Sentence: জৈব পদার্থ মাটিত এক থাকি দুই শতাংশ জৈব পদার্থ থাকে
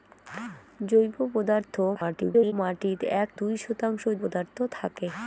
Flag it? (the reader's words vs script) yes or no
yes